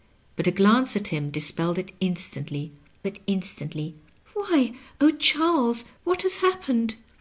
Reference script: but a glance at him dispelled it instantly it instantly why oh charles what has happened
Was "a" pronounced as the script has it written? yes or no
yes